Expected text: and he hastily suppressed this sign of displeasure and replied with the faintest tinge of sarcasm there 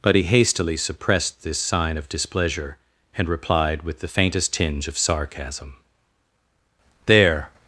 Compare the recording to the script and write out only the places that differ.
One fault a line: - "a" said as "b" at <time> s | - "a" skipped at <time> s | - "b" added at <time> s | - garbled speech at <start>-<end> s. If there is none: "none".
- "and" said as "but" at 0.0 s